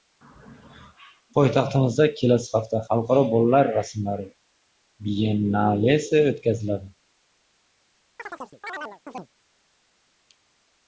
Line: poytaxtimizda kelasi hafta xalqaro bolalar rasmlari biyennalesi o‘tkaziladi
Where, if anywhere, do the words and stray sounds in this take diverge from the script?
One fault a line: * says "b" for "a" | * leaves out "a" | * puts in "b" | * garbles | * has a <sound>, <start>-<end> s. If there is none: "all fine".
* has a chirp, 8.2-9.3 s